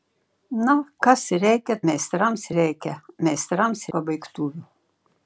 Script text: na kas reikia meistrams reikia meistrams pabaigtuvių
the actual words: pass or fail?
pass